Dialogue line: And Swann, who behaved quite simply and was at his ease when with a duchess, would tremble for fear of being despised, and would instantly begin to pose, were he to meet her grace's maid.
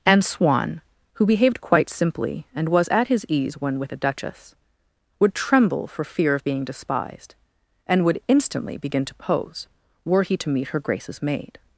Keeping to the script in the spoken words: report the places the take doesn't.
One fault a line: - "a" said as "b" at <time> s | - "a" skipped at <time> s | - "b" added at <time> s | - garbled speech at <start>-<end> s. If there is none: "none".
none